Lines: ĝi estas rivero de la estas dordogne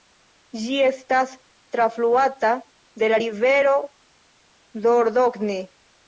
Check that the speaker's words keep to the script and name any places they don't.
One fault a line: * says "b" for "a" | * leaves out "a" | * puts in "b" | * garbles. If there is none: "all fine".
* says "trafluata" for "rivero"
* says "rivero" for "estas"